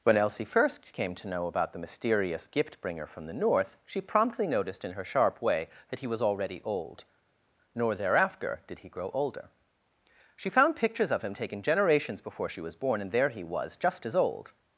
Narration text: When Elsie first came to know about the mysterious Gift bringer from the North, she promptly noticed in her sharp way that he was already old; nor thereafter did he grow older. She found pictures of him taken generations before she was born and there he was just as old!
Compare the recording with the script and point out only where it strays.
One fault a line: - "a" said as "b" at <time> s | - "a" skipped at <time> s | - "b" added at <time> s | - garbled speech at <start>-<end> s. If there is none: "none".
none